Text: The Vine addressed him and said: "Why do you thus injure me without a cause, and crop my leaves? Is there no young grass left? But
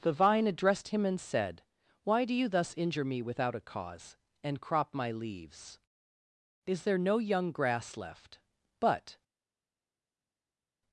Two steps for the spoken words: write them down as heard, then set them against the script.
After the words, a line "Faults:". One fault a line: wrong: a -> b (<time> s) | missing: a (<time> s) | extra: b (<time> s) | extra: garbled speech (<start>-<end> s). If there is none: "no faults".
The Vine addressed him and said: "Why do you thus injure me without a cause, and crop my leaves? Is there no young grass left? But
Faults:
no faults